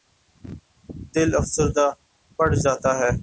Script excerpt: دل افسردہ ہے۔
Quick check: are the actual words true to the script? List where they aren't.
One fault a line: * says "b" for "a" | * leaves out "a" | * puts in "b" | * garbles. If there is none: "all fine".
* puts in "پڑ جاتا"